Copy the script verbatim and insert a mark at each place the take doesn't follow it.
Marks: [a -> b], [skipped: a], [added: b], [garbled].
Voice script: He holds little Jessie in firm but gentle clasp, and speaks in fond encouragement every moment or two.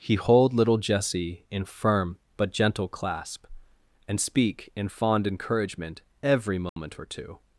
He [holds -> hold] little Jessie in firm but gentle clasp, and [speaks -> speak] in fond encouragement every moment or two.